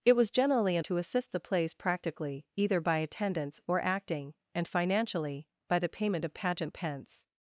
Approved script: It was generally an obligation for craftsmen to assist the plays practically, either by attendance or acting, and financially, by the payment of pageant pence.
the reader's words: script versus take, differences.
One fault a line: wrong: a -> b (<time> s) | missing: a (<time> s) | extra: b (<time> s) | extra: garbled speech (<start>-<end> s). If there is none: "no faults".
missing: obligation for craftsmen (0.8 s)